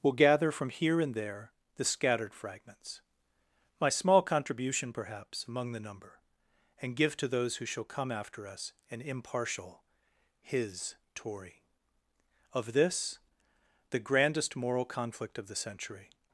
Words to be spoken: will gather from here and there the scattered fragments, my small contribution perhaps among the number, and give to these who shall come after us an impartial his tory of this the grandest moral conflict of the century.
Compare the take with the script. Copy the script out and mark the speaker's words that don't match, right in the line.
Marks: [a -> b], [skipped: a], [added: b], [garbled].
will gather from here and there the scattered fragments, my small contribution perhaps among the number, and give to [these -> those] who shall come after us an impartial his tory of this the grandest moral conflict of the century.